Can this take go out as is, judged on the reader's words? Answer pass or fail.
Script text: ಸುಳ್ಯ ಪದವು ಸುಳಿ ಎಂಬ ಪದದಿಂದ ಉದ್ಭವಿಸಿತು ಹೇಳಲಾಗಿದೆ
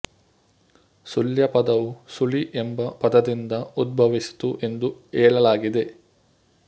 fail